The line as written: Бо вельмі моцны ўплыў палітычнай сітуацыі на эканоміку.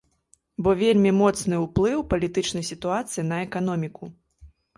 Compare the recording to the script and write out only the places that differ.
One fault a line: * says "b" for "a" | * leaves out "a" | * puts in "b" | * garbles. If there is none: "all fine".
all fine